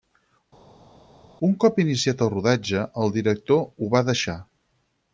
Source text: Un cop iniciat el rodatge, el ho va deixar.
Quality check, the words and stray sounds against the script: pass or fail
fail